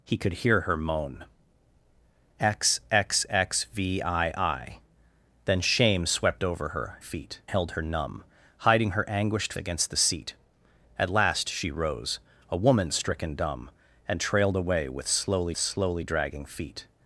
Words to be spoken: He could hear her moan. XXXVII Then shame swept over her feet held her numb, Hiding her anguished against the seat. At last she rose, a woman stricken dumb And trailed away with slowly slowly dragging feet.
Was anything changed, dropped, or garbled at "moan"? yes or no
no